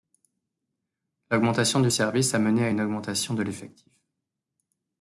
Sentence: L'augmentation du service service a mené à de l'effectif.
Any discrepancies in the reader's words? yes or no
yes